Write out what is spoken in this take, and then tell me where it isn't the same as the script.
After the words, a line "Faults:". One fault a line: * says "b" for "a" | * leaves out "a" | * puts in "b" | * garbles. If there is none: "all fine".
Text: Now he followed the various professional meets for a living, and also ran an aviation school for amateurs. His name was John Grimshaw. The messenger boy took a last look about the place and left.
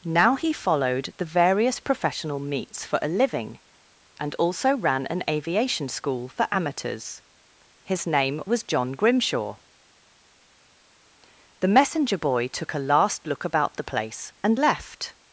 Now he followed the various professional meets for a living, and also ran an aviation school for amateurs. His name was John Grimshaw. The messenger boy took a last look about the place and left.
Faults:
all fine